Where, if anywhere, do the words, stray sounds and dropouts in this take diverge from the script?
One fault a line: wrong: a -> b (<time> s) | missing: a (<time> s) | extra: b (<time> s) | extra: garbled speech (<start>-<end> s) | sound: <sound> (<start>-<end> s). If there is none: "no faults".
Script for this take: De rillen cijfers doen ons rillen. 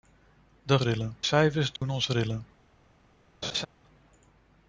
sound: dropout (1.8-1.8 s)
sound: laugh (3.4-3.7 s)